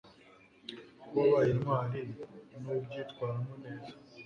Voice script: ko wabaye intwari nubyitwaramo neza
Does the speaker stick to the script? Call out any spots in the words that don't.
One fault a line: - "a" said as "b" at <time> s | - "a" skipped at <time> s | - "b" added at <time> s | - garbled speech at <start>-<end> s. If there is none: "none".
none